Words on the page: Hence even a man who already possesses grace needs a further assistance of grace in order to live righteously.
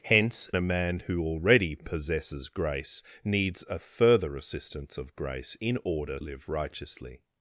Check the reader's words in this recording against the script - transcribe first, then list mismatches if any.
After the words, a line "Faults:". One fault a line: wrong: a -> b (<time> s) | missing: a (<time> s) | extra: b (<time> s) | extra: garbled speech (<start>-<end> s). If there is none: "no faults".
Hence a man who already possesses grace needs a further assistance of grace in order live righteously.
Faults:
missing: even (0.5 s)
missing: to (6.2 s)